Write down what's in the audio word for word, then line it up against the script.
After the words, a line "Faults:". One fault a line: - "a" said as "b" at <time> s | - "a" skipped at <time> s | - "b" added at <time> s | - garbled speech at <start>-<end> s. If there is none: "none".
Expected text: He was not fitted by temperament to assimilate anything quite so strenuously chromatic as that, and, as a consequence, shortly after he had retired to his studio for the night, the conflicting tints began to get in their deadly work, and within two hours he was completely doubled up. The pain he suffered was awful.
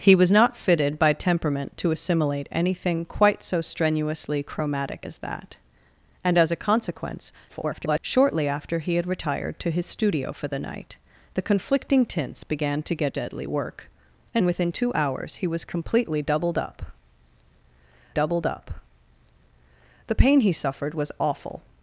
He was not fitted by temperament to assimilate anything quite so strenuously chromatic as that, and, as a consequence, [garbled] shortly after he had retired to his studio for the night, the conflicting tints began to get deadly work, and within two hours he was completely doubled up doubled up. The pain he suffered was awful.
Faults:
- garbled speech at 7.5-8.0 s
- "in their" skipped at 13.1 s
- "doubled up" added at 18.1 s